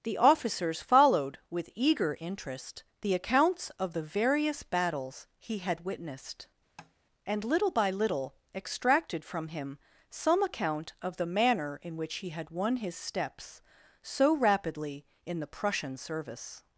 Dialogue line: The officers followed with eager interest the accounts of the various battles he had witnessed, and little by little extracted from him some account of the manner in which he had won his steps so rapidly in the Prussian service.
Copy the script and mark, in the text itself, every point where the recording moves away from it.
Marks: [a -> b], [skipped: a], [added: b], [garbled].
The officers followed with eager interest the accounts of the various battles he had witnessed, and little by little extracted from him some account of the manner in which he had won his steps so rapidly in the Prussian service.